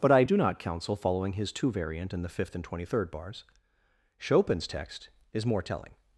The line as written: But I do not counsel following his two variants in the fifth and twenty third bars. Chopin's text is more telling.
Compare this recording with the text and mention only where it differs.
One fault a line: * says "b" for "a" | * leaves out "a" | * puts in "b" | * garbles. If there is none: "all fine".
* says "variant" for "variants"